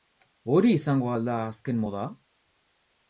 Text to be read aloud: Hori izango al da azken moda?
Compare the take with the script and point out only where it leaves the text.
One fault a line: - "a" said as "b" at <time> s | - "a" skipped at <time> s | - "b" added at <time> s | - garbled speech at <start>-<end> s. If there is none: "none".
none